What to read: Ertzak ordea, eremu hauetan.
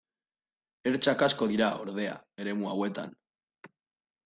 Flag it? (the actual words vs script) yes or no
yes